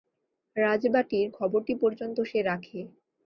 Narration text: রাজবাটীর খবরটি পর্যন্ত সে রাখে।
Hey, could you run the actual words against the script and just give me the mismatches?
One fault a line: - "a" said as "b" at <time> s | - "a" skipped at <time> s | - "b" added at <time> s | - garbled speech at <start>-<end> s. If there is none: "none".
none